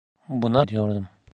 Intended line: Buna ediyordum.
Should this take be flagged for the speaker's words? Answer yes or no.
no